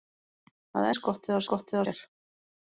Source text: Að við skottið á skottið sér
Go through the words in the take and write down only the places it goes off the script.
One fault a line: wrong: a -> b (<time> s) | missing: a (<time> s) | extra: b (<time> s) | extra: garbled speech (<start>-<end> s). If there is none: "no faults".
no faults